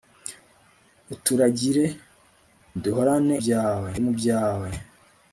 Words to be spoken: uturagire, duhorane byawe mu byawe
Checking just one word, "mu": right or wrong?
right